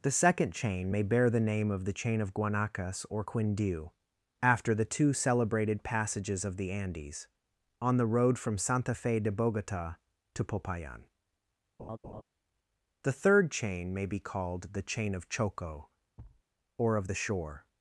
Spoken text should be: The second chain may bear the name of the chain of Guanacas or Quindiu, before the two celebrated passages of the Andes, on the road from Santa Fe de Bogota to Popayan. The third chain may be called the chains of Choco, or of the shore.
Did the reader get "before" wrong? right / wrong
wrong